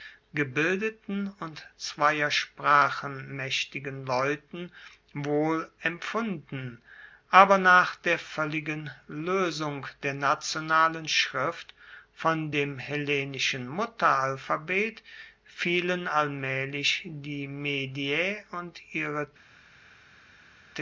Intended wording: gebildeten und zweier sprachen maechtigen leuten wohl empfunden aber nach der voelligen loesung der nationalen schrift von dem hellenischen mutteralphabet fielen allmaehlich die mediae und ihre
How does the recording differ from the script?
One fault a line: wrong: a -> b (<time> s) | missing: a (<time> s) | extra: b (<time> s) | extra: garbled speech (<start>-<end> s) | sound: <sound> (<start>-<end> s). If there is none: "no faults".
no faults